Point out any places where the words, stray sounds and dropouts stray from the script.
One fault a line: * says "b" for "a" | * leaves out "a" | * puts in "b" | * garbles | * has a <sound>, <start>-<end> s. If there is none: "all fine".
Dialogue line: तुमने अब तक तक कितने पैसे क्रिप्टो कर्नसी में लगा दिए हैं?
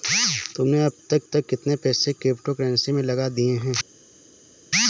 all fine